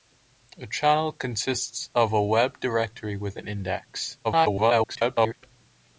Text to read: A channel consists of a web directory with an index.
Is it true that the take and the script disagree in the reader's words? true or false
true